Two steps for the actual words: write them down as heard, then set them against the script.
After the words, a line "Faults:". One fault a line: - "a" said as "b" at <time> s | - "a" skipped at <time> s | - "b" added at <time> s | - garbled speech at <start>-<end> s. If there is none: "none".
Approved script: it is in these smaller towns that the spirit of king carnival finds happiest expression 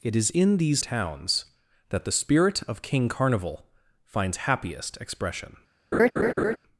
it is in these towns that the spirit of king carnival finds happiest expression
Faults:
- "smaller" skipped at 0.8 s